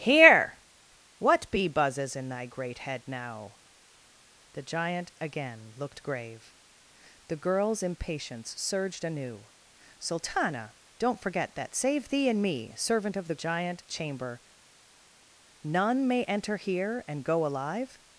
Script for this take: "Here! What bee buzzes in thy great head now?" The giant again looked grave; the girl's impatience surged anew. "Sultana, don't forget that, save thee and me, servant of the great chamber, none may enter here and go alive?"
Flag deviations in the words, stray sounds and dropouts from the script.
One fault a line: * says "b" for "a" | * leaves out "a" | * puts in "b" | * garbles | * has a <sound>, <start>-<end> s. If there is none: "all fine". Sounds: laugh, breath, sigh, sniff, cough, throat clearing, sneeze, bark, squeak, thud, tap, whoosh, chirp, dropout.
* says "giant" for "great"